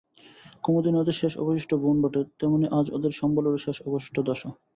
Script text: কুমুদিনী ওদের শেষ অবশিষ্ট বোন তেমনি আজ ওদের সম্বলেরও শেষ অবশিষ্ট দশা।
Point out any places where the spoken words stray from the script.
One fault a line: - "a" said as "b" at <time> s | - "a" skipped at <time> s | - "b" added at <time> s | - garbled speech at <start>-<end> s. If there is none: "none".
- "বটে" added at 2.0 s